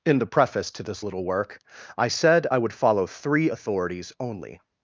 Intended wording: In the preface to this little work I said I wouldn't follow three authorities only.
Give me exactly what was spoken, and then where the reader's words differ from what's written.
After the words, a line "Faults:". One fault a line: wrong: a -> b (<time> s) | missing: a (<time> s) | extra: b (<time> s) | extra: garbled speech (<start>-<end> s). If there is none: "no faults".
In the preface to this little work I said I would follow three authorities only.
Faults:
wrong: wouldn't -> would (2.6 s)